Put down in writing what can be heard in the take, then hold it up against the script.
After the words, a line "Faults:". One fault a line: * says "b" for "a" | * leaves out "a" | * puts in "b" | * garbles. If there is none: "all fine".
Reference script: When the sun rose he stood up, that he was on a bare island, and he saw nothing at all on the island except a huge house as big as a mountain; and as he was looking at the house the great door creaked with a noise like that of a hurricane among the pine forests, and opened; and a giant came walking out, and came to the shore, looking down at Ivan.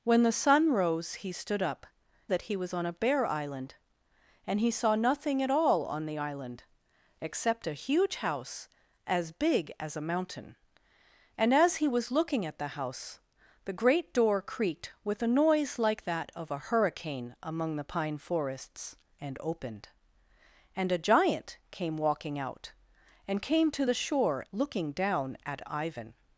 When the sun rose he stood up, that he was on a bare island, and he saw nothing at all on the island except a huge house as big as a mountain; and as he was looking at the house the great door creaked with a noise like that of a hurricane among the pine forests, and opened; and a giant came walking out, and came to the shore, looking down at Ivan.
Faults:
all fine